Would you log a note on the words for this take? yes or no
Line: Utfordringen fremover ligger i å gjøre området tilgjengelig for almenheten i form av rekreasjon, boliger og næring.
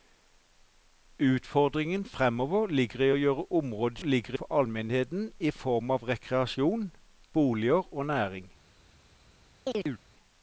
yes